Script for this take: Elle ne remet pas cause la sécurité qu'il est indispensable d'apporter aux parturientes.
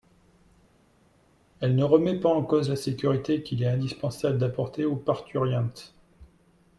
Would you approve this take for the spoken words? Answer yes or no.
no